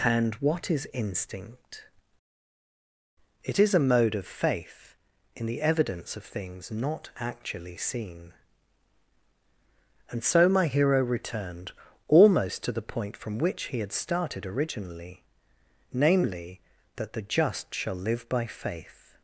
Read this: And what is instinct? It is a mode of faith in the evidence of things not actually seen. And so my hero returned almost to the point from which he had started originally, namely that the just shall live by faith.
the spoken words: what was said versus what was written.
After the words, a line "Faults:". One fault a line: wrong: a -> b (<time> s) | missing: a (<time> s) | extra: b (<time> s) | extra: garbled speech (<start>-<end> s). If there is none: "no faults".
And what is instinct? It is a mode of faith in the evidence of things not actually seen. And so my hero returned almost to the point from which he had started originally, namely that the just shall live by faith.
Faults:
no faults